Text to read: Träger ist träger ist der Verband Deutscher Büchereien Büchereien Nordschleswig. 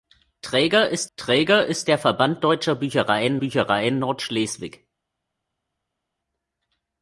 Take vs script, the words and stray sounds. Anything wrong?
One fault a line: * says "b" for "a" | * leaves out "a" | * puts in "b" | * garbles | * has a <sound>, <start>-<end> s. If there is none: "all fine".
all fine